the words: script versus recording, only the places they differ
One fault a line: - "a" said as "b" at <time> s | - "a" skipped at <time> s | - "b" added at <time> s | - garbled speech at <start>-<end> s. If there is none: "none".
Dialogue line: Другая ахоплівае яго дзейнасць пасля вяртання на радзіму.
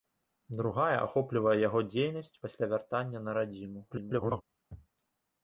- garbled speech at 3.9-4.4 s